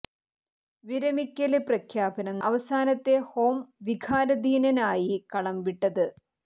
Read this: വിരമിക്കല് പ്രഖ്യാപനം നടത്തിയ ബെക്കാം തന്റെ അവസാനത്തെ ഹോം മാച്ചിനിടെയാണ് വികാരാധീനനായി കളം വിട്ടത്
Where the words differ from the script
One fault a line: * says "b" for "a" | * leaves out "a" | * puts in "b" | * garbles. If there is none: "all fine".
* leaves out "നടത്തിയ ബെക്കാം തന്റെ"
* leaves out "മാച്ചിനിടെയാണ്"